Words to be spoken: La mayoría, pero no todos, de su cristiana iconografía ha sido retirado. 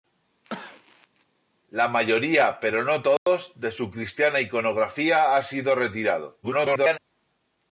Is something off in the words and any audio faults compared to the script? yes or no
yes